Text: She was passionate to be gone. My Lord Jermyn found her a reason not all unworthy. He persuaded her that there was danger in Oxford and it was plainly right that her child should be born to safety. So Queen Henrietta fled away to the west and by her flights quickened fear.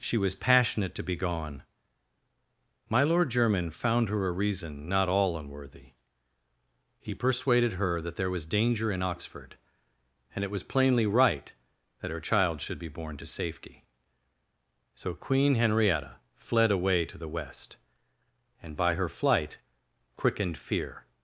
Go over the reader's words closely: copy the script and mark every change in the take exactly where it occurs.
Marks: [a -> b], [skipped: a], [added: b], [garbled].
She was passionate to be gone. My Lord Jermyn found her a reason not all unworthy. He persuaded her that there was danger in Oxford and it was plainly right that her child should be born to safety. So Queen Henrietta fled away to the west and by her [flights -> flight] quickened fear.